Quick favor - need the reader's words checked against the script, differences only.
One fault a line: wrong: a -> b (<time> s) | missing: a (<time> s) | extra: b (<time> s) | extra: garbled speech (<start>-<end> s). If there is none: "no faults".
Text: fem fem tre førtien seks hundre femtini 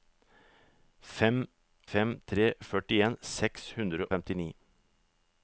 no faults